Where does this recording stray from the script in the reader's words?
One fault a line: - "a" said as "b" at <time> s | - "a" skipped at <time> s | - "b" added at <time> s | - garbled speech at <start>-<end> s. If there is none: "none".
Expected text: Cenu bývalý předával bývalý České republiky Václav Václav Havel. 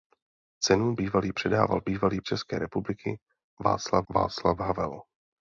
none